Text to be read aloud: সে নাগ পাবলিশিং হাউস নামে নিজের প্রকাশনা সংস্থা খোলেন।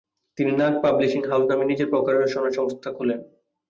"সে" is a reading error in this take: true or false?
true